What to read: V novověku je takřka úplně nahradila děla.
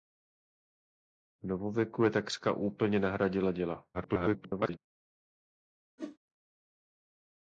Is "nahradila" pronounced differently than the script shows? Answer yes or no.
no